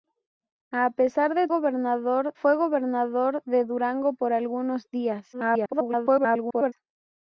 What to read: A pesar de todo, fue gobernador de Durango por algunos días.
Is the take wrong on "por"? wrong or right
right